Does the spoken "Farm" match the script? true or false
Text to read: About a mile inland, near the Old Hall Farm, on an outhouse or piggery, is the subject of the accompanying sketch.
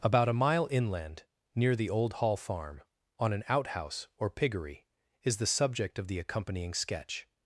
true